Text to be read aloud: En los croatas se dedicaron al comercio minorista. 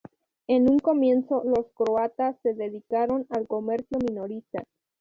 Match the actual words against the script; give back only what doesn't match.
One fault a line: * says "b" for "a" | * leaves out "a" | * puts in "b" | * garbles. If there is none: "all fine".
* puts in "un comienzo"